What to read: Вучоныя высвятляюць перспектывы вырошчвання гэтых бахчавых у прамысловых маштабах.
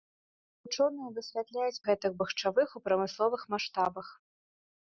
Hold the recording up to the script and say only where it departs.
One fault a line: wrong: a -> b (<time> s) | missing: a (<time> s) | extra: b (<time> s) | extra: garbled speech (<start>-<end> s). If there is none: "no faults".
missing: перспектывы вырошчвання (1.8 s)